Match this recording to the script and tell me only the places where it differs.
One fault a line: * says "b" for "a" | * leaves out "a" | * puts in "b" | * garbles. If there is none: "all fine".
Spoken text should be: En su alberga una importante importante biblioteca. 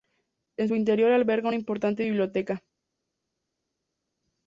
* puts in "interior"
* leaves out "importante"